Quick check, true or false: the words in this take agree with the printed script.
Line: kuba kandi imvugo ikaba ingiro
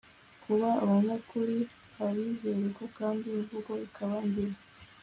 false